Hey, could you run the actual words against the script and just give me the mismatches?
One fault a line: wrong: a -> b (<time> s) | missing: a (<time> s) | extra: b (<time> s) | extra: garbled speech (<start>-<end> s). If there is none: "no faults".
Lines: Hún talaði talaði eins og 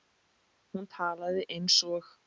missing: talaði (1.4 s)